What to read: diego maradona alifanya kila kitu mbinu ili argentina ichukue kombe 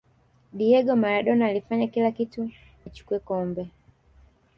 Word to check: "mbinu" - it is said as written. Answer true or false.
false